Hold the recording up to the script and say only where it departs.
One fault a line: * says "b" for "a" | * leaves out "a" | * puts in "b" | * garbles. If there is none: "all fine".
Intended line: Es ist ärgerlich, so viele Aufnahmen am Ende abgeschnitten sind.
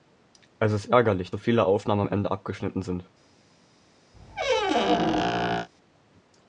all fine